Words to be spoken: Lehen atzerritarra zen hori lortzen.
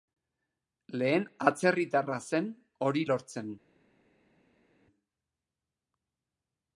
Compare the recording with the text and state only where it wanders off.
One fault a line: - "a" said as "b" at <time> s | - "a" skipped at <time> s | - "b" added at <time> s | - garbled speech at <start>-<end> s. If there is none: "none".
none